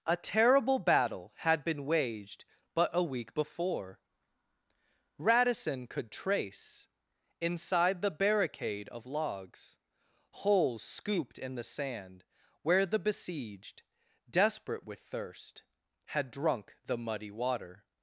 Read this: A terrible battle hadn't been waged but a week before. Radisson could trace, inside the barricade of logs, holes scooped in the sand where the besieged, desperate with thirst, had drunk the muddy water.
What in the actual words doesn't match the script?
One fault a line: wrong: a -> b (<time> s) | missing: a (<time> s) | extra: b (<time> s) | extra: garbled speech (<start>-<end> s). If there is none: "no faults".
wrong: hadn't -> had (1.4 s)